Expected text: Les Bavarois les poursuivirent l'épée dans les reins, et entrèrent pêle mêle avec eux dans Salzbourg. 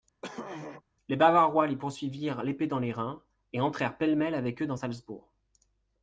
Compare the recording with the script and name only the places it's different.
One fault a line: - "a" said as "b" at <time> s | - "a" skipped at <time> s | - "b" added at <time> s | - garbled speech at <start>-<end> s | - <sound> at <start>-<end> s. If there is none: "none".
- throat clearing at 0.2-0.8 s